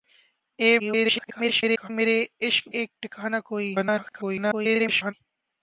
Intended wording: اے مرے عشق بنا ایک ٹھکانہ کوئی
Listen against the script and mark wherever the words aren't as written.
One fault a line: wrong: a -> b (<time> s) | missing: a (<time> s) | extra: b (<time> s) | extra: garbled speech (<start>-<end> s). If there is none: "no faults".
extra: garbled speech (0.8-1.9 s)
missing: بنا (2.6 s)
extra: garbled speech (3.7-5.1 s)